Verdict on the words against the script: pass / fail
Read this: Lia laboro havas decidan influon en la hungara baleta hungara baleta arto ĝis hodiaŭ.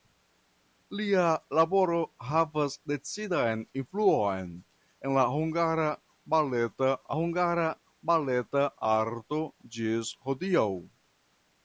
pass